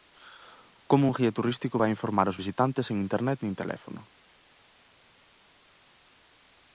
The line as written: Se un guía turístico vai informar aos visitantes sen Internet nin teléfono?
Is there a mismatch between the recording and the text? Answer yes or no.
yes